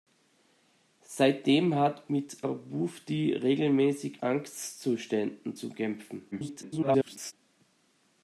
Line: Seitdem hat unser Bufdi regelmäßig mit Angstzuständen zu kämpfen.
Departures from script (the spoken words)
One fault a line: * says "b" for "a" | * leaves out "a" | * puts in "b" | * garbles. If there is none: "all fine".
* says "mit" for "unser"
* leaves out "mit"
* garbles